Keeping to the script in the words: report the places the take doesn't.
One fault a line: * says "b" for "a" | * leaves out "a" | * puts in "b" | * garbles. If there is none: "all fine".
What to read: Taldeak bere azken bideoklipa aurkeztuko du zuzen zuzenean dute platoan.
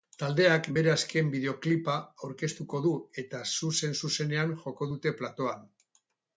* puts in "eta"
* puts in "joko"